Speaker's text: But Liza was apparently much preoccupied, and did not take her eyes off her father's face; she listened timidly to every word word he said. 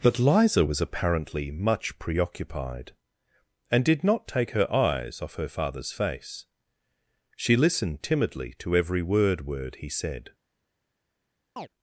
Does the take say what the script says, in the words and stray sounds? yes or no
no